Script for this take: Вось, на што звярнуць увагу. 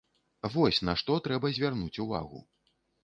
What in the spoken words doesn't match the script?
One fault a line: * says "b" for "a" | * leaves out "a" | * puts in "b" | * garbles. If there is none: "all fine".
* puts in "трэба"